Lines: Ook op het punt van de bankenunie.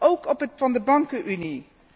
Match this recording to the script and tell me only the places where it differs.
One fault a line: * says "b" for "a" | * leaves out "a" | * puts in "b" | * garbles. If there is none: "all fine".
* leaves out "punt"